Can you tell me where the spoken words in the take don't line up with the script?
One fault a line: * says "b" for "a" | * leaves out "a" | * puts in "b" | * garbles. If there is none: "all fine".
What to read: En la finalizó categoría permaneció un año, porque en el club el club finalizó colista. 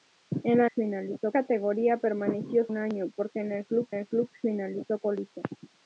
all fine